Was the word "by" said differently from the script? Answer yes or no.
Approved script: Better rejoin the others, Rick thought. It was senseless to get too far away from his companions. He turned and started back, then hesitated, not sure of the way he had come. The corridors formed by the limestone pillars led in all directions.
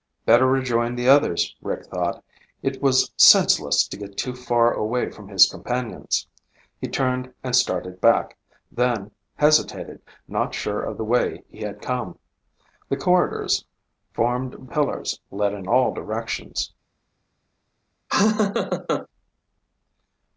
yes